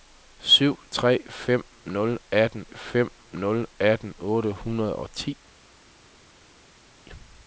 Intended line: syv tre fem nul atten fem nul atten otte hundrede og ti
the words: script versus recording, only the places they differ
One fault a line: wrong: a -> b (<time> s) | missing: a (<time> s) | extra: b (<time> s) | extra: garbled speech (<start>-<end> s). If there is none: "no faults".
no faults